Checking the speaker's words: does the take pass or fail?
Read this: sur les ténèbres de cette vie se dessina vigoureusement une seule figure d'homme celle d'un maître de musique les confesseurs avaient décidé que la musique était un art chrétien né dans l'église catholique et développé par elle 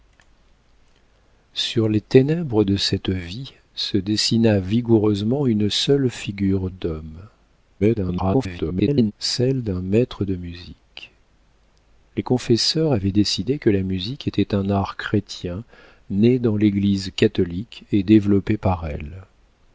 fail